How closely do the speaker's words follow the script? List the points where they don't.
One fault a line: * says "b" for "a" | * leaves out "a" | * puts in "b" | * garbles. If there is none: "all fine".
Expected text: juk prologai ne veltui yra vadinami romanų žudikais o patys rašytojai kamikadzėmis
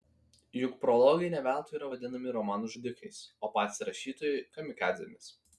all fine